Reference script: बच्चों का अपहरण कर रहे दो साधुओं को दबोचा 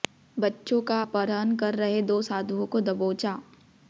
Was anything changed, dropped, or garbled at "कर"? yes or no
no